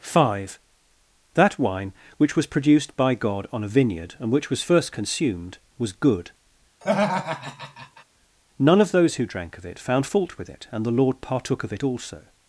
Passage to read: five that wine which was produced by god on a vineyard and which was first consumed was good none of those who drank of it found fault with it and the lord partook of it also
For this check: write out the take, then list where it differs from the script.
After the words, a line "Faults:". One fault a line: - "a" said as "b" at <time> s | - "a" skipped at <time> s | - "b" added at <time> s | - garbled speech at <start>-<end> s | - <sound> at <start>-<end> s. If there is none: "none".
five that wine which was produced by god on a vineyard and which was first consumed was good none of those who drank of it found fault with it and the lord partook of it also
Faults:
- laugh at 6.8-8.0 s